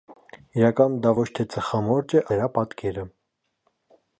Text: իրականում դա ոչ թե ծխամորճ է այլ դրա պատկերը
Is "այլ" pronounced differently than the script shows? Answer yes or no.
yes